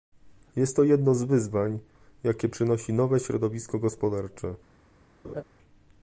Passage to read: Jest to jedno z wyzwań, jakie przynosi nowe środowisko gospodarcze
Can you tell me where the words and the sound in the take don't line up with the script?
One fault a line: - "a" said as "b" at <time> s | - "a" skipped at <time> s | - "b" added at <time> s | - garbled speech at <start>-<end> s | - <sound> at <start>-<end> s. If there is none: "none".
- laugh at 5.2-5.4 s